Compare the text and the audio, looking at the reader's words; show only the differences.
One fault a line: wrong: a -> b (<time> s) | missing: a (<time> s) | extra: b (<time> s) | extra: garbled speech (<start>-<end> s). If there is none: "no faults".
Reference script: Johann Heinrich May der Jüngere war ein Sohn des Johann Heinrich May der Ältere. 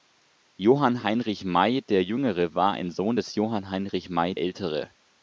missing: der (4.3 s)